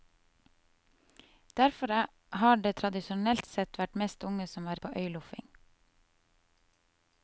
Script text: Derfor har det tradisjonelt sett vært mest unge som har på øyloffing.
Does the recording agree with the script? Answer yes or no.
yes